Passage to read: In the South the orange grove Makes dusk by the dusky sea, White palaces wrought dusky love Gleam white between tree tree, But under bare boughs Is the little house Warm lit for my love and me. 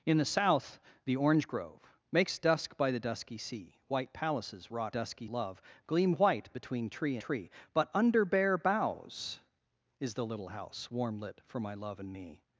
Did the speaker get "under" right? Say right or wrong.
right